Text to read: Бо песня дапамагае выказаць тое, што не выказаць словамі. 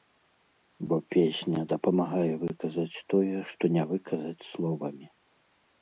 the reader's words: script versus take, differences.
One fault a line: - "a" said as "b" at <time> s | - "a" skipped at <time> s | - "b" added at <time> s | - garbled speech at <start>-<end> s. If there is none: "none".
none